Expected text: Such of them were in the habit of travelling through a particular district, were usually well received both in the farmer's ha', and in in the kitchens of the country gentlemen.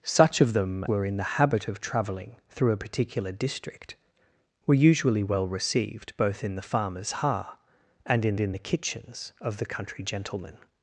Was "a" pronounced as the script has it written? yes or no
yes